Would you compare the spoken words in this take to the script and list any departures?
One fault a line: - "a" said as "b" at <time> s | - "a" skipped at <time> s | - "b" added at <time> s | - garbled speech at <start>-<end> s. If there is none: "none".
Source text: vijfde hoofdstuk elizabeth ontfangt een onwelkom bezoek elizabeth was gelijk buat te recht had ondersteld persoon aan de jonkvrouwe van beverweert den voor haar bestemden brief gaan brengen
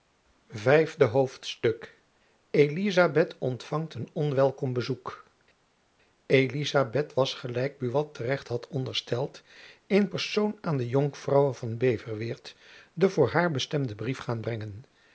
- "in" added at 9.9 s